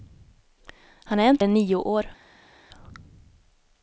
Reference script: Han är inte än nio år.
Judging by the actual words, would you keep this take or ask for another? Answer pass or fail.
pass